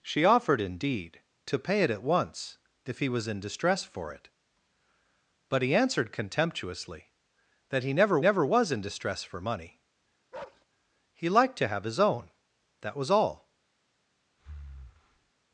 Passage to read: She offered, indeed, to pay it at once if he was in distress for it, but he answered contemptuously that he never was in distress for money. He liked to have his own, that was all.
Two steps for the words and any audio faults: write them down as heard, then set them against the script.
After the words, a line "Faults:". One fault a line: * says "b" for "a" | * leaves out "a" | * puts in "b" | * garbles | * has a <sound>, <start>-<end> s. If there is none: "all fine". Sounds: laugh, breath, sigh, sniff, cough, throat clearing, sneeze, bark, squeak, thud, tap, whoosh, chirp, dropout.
She offered, indeed, to pay it at once if he was in distress for it, but he answered contemptuously that he never never was in distress for money. He liked to have his own, that was all.
Faults:
* puts in "never"
* has a bark, 10.3-10.7 s
* has a breath, 14.4-15.3 s